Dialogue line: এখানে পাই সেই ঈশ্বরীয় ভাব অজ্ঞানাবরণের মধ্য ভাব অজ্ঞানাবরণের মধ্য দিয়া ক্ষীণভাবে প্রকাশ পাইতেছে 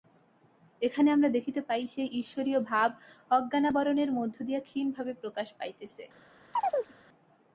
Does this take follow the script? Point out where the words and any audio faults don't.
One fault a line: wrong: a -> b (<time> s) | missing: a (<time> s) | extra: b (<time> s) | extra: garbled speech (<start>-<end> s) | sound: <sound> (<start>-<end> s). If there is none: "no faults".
extra: আমরা দেখিতে (1.1 s)
missing: ভাব অজ্ঞানাবরণের মধ্য (4.4 s)
sound: chirp (6.5-6.9 s)